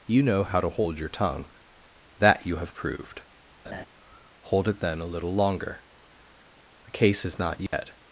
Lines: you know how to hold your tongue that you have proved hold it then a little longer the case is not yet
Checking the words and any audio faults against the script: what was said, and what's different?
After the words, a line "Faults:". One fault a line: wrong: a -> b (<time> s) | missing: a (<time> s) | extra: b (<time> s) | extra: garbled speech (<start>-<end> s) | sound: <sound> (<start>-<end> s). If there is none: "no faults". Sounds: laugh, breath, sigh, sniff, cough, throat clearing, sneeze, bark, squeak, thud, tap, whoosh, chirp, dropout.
you know how to hold your tongue that you have proved hold it then a little longer the case is not yet
Faults:
sound: laugh (3.6-3.9 s)
sound: dropout (7.7-7.7 s)